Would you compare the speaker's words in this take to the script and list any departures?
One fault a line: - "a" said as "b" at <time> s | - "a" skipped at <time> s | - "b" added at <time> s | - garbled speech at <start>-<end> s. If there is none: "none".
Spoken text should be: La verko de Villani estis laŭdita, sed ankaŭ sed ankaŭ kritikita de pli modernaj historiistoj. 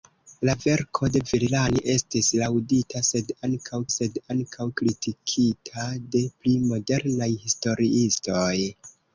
none